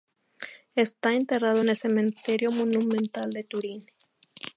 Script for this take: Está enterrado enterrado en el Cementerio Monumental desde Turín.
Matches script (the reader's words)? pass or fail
fail